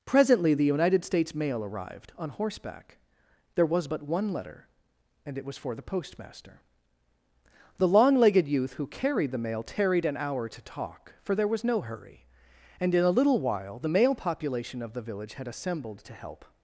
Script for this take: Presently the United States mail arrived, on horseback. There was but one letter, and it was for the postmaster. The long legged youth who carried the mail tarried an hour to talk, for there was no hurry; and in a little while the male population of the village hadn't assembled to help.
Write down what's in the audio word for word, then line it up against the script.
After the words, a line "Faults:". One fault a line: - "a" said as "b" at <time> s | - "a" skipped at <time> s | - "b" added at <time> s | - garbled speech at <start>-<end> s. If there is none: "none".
Presently the United States mail arrived, on horseback. There was but one letter, and it was for the postmaster. The long legged youth who carried the mail tarried an hour to talk, for there was no hurry; and in a little while the male population of the village had assembled to help.
Faults:
- "hadn't" said as "had" at 15.3 s